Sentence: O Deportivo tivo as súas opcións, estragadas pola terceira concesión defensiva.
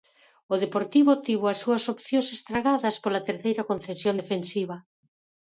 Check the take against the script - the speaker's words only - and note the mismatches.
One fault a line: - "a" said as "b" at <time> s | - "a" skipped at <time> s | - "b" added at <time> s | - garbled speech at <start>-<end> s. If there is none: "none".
none